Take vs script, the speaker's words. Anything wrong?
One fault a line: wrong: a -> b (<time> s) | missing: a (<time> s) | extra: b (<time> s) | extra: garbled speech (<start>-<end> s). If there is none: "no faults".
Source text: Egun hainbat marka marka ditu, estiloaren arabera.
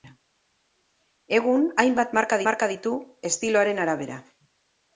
no faults